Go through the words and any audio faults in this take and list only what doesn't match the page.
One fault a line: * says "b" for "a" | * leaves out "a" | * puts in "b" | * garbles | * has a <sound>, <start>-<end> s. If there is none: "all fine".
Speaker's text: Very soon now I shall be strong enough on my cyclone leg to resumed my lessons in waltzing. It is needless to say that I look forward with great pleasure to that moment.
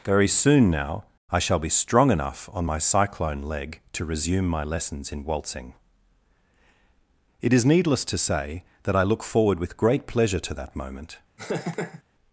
* says "resume" for "resumed"
* has a laugh, 11.4-12.0 s